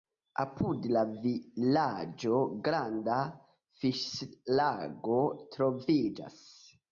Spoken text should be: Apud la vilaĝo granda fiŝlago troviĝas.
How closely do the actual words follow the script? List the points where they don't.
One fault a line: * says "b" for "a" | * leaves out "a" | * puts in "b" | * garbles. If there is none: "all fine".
all fine